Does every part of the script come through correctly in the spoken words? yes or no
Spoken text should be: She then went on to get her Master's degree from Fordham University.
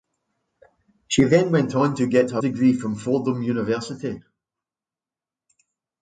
no